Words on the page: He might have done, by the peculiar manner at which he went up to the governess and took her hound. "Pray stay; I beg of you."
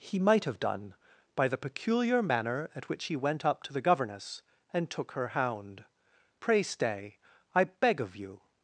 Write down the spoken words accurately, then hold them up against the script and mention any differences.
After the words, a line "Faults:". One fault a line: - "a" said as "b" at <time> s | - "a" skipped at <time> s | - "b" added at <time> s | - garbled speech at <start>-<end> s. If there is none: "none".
He might have done, by the peculiar manner at which he went up to the governess and took her hound. "Pray stay; I beg of you."
Faults:
none